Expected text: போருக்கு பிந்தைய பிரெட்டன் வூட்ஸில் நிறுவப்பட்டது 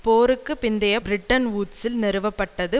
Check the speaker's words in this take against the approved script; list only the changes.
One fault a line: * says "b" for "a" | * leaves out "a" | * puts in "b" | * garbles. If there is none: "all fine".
all fine